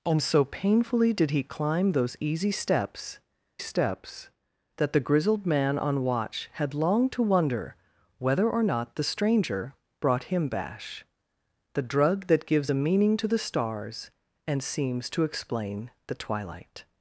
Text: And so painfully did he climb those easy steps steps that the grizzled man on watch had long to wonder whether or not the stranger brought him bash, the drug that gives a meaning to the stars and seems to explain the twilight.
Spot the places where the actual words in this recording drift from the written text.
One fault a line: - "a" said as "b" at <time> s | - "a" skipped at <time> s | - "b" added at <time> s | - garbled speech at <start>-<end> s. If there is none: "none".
none